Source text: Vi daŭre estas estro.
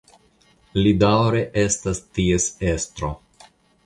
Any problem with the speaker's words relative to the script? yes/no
yes